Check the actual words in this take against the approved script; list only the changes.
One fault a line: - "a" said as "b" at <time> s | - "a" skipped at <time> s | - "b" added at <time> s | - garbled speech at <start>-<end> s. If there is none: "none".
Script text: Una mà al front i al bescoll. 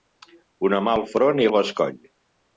none